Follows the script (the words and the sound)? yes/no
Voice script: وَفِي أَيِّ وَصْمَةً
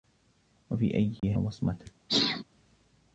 no